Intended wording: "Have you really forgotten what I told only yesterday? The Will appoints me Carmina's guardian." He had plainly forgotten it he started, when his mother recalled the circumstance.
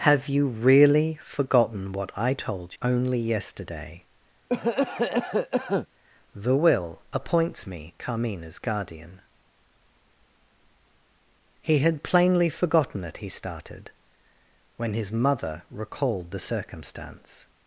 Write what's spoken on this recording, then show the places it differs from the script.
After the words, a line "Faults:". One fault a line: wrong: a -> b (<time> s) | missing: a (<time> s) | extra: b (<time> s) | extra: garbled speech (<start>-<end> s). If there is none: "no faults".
"Have you really forgotten what I told only yesterday? The Will appoints me Carmina's guardian." He had plainly forgotten it he started, when his mother recalled the circumstance.
Faults:
no faults